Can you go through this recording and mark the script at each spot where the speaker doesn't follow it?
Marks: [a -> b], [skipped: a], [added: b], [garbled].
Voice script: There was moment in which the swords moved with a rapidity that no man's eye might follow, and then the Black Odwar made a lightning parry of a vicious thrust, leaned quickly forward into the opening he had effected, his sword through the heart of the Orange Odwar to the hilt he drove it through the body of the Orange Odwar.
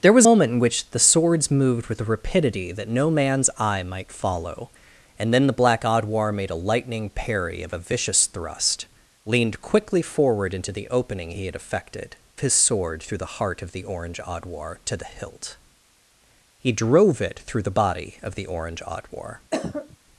There was moment in which the swords moved with a rapidity that no man's eye might follow, and then the Black Odwar made a lightning parry of a vicious thrust, leaned quickly forward into the opening he had effected, his sword through the heart of the Orange Odwar to the hilt he drove it through the body of the Orange Odwar.